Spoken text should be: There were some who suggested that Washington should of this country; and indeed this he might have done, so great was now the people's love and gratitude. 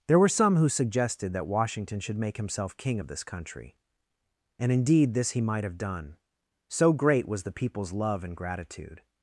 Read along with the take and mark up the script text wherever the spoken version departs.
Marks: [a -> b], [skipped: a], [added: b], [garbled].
There were some who suggested that Washington should [added: make himself king] of this country; and indeed this he might have done, so great was [skipped: now] the people's love and gratitude.